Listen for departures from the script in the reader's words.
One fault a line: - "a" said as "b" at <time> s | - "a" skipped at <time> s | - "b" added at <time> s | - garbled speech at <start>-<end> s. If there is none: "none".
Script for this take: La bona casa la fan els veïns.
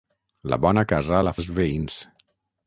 - "fan" skipped at 1.4 s